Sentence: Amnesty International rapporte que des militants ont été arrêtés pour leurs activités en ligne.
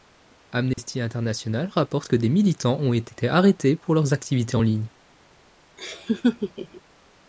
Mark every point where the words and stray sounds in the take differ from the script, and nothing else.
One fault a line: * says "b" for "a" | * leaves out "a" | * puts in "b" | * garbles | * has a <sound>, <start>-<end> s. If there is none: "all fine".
* has a dropout, 0.7-0.8 s
* has a laugh, 5.8-6.8 s